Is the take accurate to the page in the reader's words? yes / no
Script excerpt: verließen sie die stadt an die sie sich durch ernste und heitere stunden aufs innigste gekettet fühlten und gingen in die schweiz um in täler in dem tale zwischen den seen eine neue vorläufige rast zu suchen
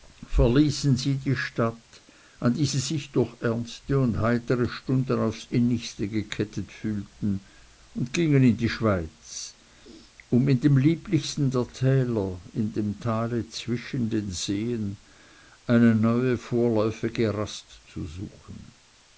no